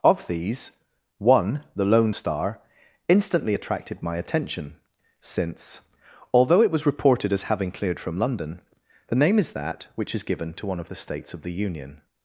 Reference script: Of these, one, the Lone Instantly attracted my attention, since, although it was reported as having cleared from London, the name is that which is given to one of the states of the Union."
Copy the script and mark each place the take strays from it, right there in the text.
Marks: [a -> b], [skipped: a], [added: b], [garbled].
Of these, one, the Lone [added: Star] Instantly attracted my attention, since, although it was reported as having cleared from London, the name is that which is given to one of the states of the Union."